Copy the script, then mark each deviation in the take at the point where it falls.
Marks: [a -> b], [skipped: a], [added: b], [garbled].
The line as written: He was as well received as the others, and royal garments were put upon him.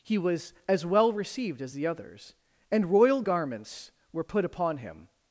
He was as well received as the others, and royal garments were put upon him.